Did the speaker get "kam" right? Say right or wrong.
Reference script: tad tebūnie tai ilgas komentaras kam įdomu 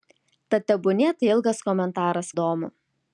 wrong